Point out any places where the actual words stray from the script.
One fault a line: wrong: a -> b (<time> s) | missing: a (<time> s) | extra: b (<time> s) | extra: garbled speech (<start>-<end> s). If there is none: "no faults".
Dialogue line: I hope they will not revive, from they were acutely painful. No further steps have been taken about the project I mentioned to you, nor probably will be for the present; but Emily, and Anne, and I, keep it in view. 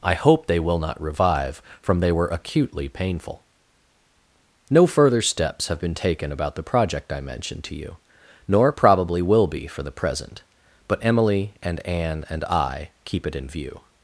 no faults